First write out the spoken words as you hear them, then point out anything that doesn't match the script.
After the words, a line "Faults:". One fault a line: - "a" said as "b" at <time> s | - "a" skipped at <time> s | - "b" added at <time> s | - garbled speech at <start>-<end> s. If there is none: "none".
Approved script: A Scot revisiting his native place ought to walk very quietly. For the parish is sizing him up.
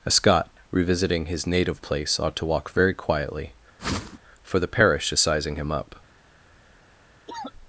A Scot revisiting his native place ought to walk very quietly. For the parish is sizing him up.
Faults:
none